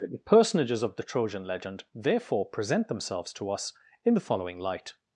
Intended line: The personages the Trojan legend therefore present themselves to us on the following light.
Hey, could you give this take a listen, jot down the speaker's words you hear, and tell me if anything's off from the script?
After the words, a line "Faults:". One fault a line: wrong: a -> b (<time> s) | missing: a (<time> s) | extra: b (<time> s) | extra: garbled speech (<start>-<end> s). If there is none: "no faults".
The personages of the Trojan legend therefore present themselves to us in the following light.
Faults:
extra: of (0.8 s)
wrong: on -> in (4.0 s)